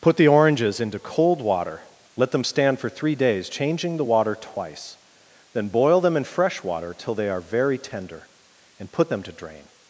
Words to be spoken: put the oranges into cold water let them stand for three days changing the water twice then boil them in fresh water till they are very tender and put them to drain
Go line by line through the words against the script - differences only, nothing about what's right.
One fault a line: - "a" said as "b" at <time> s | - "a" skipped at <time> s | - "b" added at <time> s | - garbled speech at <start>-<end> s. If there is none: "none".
none